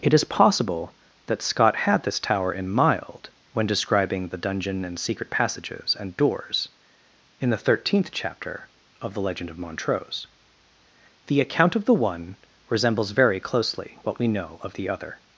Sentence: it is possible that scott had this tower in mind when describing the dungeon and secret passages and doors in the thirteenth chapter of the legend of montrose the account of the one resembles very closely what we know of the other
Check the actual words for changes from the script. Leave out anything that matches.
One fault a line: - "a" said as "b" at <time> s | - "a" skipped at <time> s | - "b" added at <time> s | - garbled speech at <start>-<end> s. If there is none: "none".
- "mind" said as "mild" at 2.7 s